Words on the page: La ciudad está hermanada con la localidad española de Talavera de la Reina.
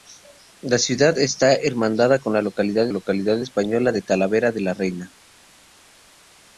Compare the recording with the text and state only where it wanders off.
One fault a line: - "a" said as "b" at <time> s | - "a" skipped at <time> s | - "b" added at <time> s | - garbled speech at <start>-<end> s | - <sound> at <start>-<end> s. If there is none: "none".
- "localidad" added at 2.9 s